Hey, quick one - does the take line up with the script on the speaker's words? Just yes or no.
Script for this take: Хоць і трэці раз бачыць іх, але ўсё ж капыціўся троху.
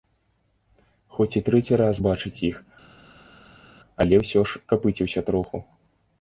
yes